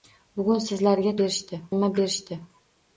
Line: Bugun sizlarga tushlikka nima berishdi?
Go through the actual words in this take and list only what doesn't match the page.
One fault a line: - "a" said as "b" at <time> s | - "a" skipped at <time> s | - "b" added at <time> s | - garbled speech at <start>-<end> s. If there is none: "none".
- "tushlikka" said as "berishdi" at 1.2 s